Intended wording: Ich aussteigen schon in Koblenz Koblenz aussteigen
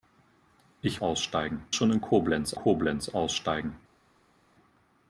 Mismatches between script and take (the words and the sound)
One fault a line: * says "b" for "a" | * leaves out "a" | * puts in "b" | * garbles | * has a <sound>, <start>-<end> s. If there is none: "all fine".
all fine